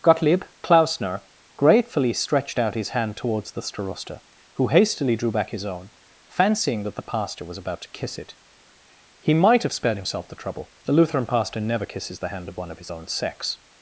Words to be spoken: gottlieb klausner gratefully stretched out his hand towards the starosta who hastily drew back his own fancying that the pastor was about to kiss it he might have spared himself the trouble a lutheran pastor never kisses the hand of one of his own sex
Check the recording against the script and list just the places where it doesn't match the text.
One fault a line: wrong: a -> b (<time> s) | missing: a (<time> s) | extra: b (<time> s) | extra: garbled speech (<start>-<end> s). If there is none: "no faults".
wrong: a -> the (10.9 s)